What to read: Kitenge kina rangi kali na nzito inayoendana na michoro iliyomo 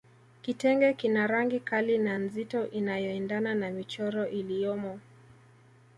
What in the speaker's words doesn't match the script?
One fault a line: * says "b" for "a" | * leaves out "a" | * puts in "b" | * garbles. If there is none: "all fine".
all fine